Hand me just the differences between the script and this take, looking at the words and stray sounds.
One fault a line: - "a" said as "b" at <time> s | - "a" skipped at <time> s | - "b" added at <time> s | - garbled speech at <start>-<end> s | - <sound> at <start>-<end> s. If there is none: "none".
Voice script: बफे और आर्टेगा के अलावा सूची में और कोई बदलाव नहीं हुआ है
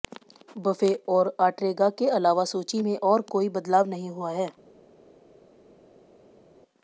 none